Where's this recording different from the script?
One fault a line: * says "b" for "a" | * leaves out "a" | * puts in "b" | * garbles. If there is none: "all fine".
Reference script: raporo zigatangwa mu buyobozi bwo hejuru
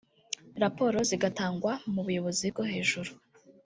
all fine